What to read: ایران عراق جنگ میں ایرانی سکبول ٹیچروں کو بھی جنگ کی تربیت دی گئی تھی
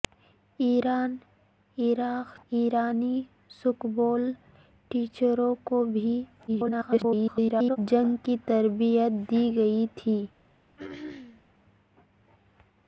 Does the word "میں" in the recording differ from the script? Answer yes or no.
yes